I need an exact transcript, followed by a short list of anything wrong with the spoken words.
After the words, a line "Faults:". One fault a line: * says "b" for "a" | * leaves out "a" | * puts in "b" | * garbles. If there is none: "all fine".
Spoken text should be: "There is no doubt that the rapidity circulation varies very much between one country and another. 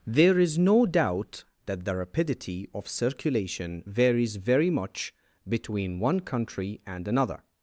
"There is no doubt that the rapidity of circulation varies very much between one country and another.
Faults:
* puts in "of"